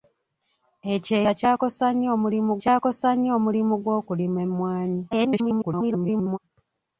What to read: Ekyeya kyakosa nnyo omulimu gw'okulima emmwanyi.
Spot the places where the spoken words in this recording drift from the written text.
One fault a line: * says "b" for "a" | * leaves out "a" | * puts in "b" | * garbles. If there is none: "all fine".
* puts in "kyakosa nnyo omulimu"
* garbles